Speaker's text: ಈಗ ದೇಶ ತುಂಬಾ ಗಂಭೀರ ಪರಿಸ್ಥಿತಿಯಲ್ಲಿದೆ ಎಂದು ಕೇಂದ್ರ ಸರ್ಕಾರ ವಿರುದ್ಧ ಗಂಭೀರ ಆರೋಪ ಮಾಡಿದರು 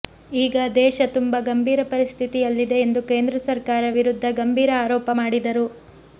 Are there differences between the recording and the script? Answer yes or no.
no